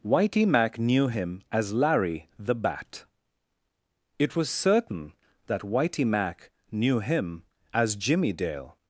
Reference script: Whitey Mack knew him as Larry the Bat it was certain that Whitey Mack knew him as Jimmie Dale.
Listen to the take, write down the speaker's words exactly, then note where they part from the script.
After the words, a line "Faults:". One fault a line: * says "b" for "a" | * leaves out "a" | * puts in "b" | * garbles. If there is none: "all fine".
Whitey Mack knew him as Larry the Bat it was certain that Whitey Mack knew him as Jimmie Dale.
Faults:
all fine